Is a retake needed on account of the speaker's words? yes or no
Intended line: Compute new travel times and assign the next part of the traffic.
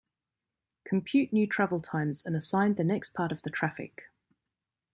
no